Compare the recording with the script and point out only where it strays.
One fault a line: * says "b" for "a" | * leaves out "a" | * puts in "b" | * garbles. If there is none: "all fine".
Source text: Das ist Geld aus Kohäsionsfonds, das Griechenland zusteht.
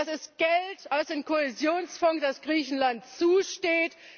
* puts in "dem"